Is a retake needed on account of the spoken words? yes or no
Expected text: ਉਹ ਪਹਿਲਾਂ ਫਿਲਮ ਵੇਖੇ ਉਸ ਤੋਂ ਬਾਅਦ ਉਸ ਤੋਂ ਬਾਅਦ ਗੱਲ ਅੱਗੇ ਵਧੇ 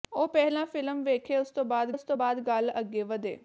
no